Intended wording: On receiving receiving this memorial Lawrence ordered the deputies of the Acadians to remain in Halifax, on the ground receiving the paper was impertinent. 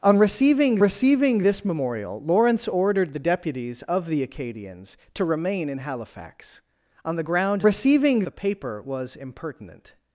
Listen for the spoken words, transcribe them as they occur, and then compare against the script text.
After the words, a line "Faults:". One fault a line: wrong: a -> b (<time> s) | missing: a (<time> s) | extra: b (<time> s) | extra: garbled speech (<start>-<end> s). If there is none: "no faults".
On receiving receiving this memorial Lawrence ordered the deputies of the Acadians to remain in Halifax, on the ground receiving the paper was impertinent.
Faults:
no faults